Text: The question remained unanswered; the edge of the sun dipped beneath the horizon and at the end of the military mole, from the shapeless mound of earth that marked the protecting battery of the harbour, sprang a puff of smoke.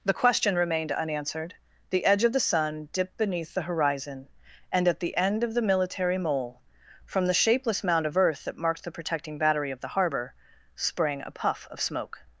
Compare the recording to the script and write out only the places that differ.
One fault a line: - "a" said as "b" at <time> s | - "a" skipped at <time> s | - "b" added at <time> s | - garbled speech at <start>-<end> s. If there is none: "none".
none